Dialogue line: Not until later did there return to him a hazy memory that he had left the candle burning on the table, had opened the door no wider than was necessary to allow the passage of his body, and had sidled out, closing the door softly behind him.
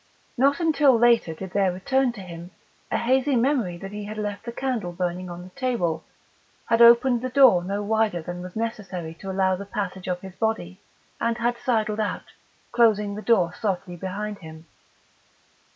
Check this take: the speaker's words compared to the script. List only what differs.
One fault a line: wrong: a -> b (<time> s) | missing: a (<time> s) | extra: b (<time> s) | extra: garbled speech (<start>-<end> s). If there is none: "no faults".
no faults